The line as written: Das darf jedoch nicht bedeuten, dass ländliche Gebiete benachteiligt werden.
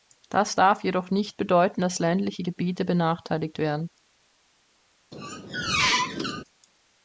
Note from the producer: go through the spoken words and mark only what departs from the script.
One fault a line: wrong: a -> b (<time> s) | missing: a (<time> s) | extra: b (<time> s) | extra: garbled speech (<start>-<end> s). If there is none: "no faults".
no faults